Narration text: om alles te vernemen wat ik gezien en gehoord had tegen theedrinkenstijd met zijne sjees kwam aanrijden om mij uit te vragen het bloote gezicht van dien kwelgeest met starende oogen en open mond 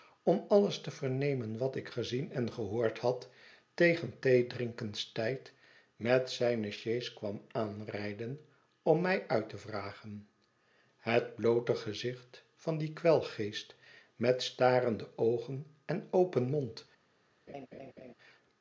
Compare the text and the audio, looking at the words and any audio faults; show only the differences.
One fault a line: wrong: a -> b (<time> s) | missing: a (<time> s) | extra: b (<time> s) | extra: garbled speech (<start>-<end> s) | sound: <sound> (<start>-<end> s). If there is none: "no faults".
sound: laugh (17.5-18.1 s)